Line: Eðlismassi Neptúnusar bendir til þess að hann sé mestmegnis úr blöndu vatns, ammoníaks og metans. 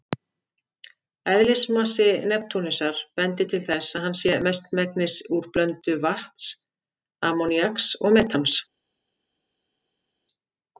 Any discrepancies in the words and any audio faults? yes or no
no